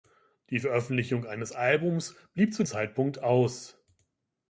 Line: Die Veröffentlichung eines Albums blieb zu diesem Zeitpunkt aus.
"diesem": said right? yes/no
no